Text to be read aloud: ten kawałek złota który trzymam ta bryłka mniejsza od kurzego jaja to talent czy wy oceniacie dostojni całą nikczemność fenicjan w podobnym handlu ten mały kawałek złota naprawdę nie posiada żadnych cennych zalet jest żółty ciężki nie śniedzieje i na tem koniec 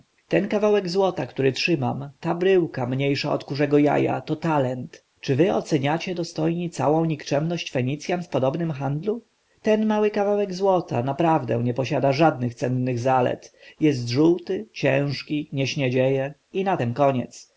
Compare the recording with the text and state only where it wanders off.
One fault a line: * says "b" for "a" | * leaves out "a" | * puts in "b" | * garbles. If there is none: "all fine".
all fine